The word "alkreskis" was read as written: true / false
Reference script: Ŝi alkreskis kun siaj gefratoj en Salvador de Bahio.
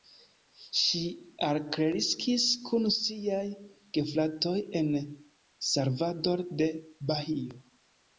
true